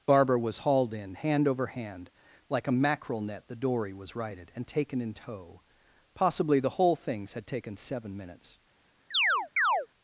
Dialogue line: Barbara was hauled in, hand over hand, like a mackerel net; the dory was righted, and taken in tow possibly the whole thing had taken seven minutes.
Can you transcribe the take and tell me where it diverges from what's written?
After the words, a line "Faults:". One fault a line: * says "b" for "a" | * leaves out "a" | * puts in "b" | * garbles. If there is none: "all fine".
Barbara was hauled in, hand over hand, like a mackerel net; the dory was righted, and taken in tow possibly the whole things had taken seven minutes.
Faults:
* says "things" for "thing"